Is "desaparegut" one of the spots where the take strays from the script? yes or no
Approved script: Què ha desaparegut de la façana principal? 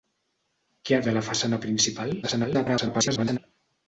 yes